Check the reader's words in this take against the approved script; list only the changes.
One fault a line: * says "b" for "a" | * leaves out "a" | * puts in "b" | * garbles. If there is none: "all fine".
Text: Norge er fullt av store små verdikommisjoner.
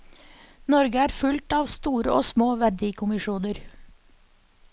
* puts in "og"